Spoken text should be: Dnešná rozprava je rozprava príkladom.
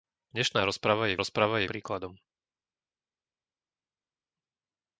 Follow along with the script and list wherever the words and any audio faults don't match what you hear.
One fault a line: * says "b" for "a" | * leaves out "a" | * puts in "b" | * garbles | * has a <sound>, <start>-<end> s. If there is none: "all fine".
all fine